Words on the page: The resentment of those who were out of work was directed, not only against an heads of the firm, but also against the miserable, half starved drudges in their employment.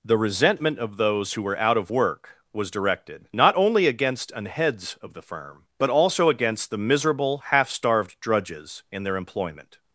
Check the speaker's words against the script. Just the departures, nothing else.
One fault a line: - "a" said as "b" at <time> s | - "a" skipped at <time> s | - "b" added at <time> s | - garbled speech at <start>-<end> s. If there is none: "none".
none